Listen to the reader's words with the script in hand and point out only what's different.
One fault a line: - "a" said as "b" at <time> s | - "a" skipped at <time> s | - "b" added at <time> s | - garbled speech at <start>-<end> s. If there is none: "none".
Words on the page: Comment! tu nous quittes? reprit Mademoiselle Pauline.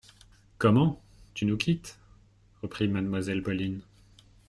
none